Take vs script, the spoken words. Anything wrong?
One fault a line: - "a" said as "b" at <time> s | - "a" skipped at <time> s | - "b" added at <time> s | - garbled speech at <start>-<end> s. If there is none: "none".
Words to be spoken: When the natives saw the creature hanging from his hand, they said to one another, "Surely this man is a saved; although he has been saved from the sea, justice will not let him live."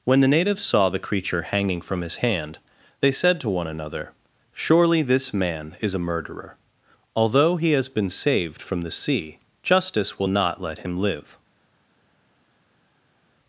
- "saved" said as "murderer" at 6.0 s